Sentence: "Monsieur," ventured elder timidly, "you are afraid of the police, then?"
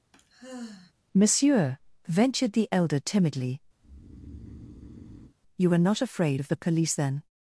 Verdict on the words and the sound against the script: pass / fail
fail